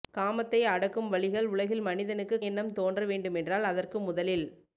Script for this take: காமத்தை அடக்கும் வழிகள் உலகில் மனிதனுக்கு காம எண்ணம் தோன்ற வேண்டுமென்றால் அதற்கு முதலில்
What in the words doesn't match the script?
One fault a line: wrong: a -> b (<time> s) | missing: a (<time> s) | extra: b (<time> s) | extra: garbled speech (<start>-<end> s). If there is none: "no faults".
missing: காம (2.4 s)